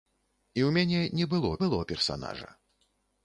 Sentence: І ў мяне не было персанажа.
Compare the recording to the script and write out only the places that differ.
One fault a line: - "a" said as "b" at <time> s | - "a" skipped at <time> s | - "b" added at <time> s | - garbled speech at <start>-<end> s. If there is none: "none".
- "было" added at 1.7 s